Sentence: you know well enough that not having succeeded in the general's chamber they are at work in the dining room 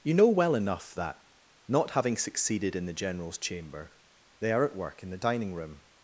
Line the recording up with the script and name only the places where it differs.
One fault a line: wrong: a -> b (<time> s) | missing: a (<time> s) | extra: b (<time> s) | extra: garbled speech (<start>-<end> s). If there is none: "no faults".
no faults